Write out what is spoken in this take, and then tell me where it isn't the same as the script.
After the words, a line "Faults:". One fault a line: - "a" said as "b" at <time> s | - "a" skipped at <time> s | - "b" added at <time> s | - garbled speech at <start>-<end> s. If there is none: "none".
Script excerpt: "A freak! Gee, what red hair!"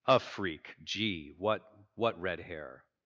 "A freak! Gee, what what red hair!"
Faults:
- "what" added at 1.9 s